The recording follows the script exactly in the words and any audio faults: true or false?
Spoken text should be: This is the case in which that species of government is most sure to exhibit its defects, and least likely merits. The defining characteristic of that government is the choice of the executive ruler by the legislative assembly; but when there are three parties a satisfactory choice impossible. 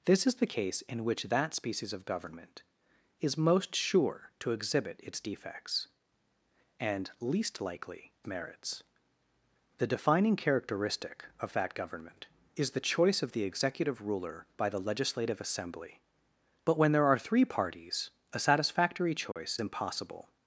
false